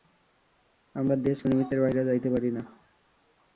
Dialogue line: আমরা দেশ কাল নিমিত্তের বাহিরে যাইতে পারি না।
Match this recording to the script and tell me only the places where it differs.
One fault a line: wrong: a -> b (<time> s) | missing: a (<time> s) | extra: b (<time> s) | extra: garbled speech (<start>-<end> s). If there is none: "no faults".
missing: কাল (1.4 s)